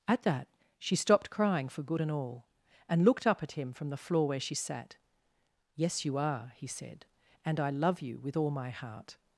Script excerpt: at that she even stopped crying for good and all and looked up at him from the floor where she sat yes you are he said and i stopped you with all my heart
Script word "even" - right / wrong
wrong